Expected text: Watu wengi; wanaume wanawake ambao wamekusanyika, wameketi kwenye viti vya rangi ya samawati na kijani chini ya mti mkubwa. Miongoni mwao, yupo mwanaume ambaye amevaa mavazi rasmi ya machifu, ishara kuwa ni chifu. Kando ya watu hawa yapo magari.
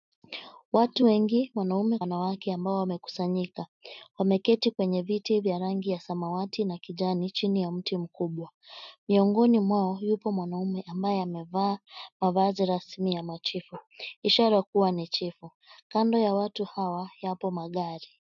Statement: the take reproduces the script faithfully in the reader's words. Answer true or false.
true